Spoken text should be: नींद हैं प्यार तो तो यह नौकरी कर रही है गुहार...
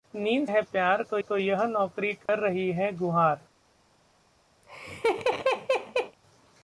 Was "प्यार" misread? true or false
false